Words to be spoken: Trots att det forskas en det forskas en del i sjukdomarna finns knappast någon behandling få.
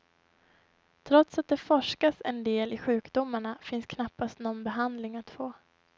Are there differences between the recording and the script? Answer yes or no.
yes